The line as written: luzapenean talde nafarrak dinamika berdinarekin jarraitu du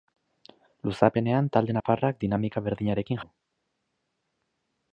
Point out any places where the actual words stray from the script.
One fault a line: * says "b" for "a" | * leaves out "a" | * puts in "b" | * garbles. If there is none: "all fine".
* leaves out "jarraitu"